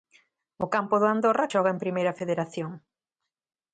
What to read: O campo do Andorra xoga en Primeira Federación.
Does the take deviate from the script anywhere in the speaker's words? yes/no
no